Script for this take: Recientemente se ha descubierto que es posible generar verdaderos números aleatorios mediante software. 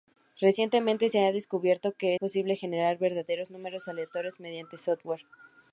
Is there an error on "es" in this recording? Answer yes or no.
yes